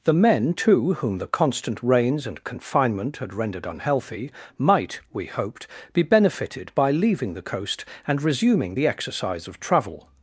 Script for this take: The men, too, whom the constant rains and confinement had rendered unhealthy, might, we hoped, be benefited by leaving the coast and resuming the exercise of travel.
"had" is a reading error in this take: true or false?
false